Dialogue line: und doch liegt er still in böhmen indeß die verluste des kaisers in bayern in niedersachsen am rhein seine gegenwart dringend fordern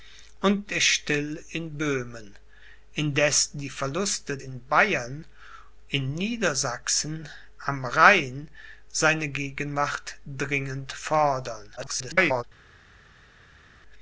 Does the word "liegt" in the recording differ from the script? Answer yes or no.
yes